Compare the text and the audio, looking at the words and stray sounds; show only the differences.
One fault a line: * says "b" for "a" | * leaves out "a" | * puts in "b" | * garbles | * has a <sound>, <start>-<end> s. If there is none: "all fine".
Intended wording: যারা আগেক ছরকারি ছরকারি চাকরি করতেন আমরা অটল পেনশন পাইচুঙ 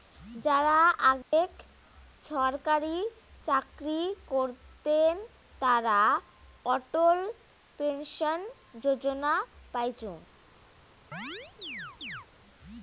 * has a dropout, 1.2-1.3 s
* leaves out "ছরকারি"
* says "তারা" for "আমরা"
* puts in "যোজনা"
* has a chirp, 11.1-12.3 s